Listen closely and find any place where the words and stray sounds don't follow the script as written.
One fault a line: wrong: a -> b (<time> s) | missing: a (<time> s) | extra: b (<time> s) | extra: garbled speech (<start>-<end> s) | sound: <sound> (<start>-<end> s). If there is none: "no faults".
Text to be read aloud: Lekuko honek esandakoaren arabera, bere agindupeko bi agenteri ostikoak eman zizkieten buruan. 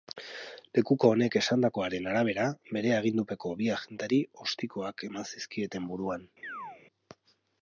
sound: chirp (6.4-6.8 s)